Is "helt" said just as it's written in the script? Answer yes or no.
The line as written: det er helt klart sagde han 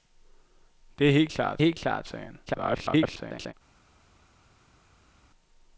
yes